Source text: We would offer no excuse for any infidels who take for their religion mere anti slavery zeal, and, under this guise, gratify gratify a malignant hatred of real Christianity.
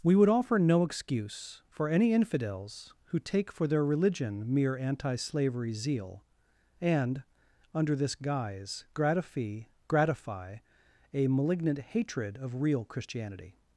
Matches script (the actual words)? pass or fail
pass